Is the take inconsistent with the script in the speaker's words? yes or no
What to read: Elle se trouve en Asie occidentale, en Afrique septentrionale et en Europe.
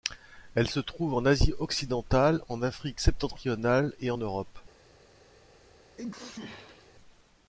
no